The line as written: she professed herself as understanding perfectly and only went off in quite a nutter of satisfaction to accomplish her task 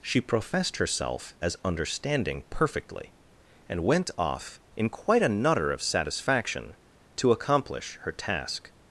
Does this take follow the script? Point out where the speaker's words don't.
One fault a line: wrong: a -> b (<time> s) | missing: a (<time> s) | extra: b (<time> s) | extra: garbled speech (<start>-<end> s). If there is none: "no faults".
missing: only (3.9 s)